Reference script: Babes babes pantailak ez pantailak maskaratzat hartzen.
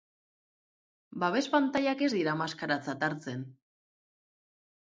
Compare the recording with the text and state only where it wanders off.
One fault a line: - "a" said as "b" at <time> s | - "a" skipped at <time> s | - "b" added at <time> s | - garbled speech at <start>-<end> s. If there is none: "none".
- "babes" skipped at 1.4 s
- "pantailak" said as "dira" at 2.1 s